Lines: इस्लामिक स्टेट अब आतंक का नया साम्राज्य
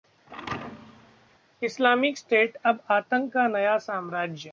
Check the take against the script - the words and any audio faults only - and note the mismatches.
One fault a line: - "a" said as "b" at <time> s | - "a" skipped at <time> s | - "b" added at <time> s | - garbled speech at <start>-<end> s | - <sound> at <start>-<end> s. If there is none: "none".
- thud at 0.3-1.4 s